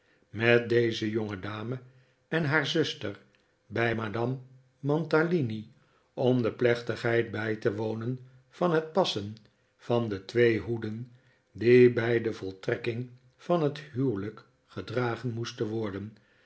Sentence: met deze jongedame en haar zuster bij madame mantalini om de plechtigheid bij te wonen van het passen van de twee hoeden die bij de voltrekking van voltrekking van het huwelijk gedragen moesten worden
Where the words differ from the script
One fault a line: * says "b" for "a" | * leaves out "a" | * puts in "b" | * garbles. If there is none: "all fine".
* leaves out "voltrekking van"